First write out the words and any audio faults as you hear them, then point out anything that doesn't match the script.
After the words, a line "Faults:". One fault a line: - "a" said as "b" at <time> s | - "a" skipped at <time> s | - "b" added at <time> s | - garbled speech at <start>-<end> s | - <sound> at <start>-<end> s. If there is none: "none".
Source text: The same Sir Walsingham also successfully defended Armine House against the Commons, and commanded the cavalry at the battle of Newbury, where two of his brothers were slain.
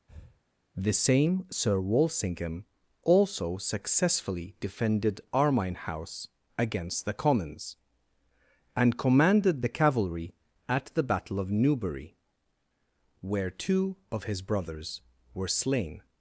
The same Sir Walsingham also successfully defended Armine House against the Commons, and commanded the cavalry at the battle of Newbury, where two of his brothers were slain.
Faults:
- breath at 0.1-0.4 s